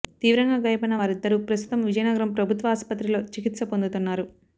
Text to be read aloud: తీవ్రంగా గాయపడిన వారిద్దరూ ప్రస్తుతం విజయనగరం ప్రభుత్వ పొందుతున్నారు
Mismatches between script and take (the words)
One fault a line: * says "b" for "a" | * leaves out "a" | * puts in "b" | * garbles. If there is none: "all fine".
* puts in "ఆసుపత్రిలో చికిత్స"